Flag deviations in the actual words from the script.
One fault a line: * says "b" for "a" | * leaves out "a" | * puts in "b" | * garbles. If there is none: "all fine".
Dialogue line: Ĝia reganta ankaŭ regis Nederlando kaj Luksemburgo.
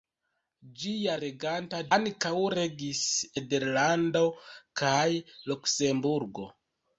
all fine